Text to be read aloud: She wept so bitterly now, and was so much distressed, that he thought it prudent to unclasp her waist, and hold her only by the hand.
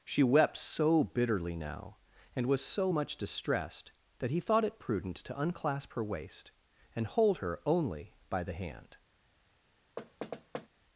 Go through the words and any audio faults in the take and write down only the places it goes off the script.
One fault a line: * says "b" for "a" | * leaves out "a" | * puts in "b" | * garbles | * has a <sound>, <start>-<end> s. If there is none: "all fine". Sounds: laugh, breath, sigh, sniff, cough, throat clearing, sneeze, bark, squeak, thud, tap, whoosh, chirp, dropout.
* has a thud, 10.0-10.7 s